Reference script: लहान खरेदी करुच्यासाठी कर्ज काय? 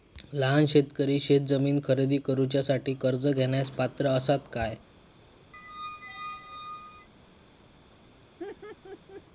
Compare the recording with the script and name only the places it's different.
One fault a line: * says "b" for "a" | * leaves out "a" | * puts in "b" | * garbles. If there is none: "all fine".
* puts in "शेतकरी शेतजमीन"
* puts in "घेण्यास पात्र असात"